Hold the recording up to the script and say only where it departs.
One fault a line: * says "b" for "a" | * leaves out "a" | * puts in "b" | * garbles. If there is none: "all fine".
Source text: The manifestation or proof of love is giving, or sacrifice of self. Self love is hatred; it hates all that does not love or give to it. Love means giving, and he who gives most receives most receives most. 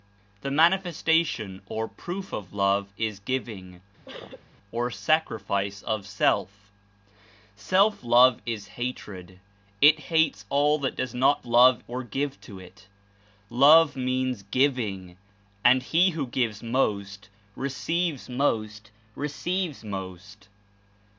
all fine